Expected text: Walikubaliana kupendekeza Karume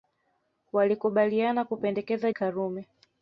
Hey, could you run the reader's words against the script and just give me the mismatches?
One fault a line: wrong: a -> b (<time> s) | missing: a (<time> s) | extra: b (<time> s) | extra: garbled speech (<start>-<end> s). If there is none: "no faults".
no faults